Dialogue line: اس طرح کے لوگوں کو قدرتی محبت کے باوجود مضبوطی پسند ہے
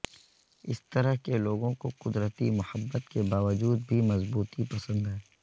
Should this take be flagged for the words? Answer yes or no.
yes